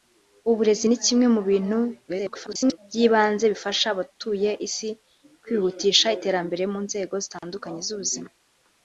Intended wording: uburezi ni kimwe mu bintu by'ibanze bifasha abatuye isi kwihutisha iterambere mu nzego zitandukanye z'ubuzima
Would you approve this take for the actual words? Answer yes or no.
no